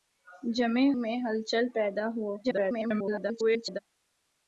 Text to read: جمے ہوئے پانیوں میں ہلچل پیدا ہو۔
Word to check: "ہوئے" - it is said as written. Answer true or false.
false